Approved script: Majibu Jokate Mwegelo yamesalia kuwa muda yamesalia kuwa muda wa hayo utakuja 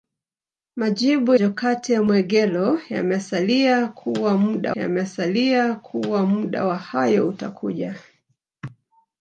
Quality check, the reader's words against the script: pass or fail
pass